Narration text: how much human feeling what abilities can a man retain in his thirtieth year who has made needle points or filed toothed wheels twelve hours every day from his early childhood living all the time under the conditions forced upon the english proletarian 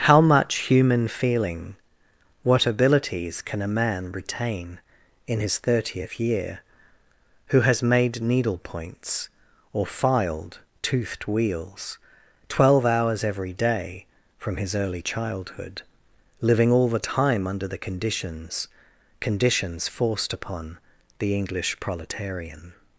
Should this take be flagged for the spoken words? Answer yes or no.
yes